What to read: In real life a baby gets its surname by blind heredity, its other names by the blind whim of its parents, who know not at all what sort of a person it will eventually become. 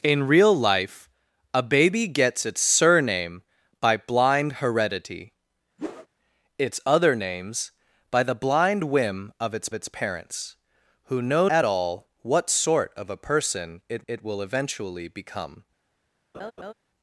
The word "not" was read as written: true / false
false